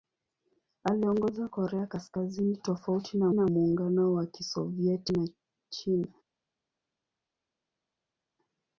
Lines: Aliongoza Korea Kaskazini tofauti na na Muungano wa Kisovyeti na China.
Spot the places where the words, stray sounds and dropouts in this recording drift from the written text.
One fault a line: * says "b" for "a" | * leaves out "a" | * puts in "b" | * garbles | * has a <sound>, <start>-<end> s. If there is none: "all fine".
all fine